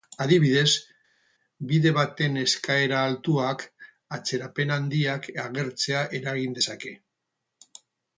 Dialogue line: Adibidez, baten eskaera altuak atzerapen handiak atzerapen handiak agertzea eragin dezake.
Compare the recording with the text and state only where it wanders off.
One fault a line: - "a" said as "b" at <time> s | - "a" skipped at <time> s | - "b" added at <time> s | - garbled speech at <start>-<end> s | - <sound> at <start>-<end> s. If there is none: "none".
- "bide" added at 1.7 s
- "atzerapen handiak" skipped at 5.3 s